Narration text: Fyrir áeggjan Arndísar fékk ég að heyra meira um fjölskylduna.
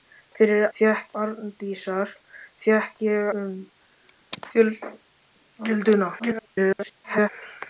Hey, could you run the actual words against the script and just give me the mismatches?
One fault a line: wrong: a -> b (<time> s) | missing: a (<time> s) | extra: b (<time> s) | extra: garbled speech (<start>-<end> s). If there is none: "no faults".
wrong: áeggjan -> fékk (0.8 s)
missing: að heyra meira (3.3 s)
extra: garbled speech (6.2-7.3 s)